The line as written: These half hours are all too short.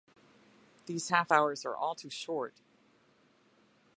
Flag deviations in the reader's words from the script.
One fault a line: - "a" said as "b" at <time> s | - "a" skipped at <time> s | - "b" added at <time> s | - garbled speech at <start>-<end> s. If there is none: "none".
none